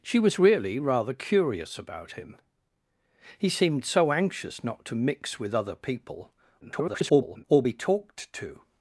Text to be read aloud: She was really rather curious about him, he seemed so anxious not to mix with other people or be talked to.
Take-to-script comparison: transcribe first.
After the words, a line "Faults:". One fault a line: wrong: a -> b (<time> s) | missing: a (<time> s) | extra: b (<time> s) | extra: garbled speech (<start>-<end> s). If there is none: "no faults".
She was really rather curious about him, he seemed so anxious not to mix with other people [garbled] or be talked to.
Faults:
extra: garbled speech (6.6-7.4 s)